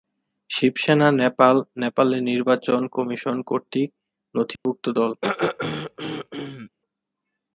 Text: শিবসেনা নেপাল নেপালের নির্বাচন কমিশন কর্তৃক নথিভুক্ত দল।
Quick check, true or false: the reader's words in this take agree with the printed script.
true